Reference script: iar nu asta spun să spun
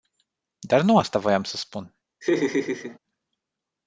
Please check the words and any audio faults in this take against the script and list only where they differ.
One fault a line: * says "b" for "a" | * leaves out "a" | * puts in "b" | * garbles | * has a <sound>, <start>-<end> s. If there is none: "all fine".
* says "dar" for "iar"
* says "voiam" for "spun"
* has a laugh, 2.2-3.0 s